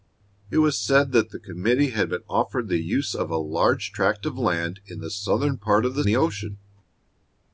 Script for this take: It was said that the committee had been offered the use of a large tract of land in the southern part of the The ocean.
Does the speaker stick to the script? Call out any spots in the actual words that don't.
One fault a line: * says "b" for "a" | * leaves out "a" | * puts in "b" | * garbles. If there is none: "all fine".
all fine